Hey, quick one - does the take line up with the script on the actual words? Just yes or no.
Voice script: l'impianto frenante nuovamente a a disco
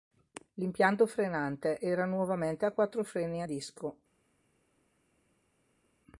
no